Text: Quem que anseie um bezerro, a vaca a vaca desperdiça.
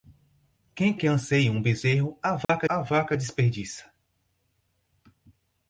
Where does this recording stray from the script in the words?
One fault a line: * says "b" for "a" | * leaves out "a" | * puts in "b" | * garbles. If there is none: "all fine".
all fine